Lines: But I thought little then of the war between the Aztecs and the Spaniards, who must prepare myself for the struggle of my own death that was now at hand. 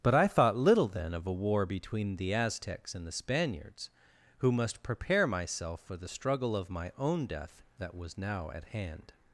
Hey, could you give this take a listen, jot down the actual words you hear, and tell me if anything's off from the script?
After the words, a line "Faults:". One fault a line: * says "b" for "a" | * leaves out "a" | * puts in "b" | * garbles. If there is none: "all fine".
But I thought little then of a war between the Aztecs and the Spaniards, who must prepare myself for the struggle of my own death that was now at hand.
Faults:
* says "a" for "the"